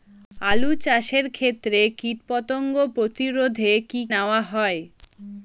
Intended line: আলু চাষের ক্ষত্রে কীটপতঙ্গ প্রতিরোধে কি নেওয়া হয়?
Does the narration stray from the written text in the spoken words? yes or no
no